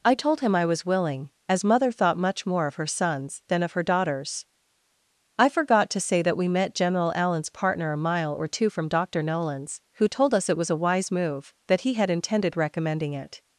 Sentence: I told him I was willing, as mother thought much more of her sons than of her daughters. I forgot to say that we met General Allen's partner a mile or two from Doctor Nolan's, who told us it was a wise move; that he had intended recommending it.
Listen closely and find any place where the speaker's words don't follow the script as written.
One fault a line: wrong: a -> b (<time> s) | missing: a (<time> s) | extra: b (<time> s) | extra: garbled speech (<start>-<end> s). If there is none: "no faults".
no faults